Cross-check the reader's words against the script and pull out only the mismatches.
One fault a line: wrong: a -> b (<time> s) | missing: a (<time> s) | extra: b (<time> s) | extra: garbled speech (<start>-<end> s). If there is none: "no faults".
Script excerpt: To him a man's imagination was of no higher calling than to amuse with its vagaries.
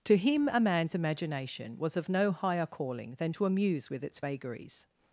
no faults